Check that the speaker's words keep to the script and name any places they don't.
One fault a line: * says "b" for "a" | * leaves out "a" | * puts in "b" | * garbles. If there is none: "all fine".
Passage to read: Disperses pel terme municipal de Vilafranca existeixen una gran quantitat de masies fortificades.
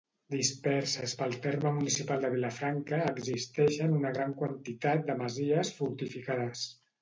all fine